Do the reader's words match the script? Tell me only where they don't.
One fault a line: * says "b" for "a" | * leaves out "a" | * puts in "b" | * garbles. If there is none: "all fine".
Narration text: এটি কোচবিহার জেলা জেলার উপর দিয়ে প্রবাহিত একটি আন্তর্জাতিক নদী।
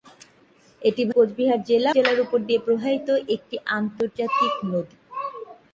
all fine